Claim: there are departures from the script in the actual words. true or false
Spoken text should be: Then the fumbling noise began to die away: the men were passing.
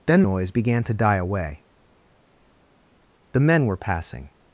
true